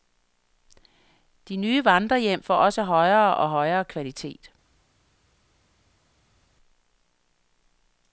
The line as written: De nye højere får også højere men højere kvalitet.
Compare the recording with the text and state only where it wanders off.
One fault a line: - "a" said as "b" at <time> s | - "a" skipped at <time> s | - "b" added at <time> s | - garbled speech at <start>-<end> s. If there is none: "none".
- "højere" said as "vandrerhjem" at 1.9 s
- "men" said as "og" at 3.4 s